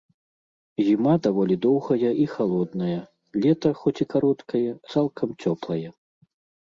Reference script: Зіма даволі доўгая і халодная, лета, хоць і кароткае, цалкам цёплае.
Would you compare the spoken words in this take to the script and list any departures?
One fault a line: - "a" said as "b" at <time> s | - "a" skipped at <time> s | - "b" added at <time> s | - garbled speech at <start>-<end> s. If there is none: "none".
none